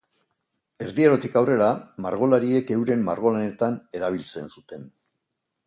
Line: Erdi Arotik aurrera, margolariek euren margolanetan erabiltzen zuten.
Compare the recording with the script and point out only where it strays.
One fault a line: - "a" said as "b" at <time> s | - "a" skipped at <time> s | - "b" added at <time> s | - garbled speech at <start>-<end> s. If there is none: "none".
none